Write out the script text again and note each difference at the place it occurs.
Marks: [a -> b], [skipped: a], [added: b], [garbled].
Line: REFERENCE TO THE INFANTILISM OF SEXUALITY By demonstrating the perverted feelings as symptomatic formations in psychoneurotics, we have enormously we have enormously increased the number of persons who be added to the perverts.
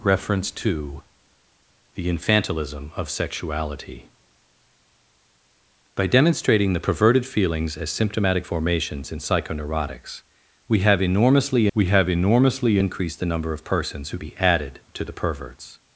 REFERENCE TO THE INFANTILISM OF SEXUALITY By demonstrating the perverted feelings as symptomatic formations in psychoneurotics, we have enormously we have enormously increased the number of persons who be added to the perverts.